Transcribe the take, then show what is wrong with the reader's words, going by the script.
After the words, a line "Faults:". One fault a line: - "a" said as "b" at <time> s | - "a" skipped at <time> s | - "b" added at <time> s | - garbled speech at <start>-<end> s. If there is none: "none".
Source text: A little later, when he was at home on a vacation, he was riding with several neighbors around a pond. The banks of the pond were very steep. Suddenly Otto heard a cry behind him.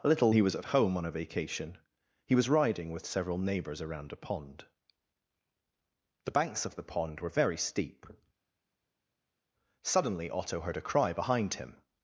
A little he was at home on a vacation, he was riding with several neighbors around a pond. The banks of the pond were very steep. Suddenly Otto heard a cry behind him.
Faults:
- "later when" skipped at 0.3 s